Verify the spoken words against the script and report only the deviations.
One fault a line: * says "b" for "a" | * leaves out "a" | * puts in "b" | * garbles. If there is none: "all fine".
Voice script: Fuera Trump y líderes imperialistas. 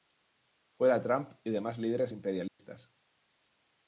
* puts in "demás"